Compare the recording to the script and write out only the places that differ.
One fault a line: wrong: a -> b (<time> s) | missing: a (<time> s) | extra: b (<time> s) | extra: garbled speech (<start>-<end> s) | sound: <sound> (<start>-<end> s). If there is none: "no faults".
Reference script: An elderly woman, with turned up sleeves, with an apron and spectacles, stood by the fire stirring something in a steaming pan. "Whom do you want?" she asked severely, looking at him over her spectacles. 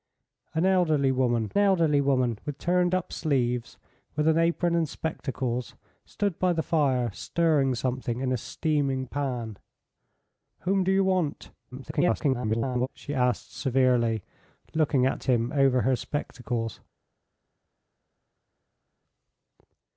extra: elderly woman (1.6 s)
extra: garbled speech (11.7-12.9 s)